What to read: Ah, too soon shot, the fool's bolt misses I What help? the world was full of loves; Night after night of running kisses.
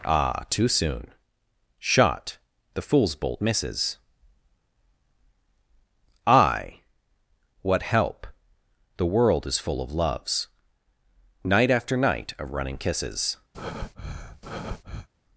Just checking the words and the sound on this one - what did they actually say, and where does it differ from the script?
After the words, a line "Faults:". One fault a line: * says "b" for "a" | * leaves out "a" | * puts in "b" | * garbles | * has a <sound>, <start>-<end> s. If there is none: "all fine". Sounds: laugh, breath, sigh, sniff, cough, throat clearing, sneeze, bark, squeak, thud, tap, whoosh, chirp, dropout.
Ah, too soon shot, the fool's bolt misses I What help? the world is full of loves; Night after night of running kisses.
Faults:
* says "is" for "was"
* has a breath, 13.5-15.1 s